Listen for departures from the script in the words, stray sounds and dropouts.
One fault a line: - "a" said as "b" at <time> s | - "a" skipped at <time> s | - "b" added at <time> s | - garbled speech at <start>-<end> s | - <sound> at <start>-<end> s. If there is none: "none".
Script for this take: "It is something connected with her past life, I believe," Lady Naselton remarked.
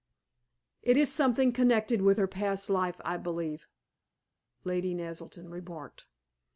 none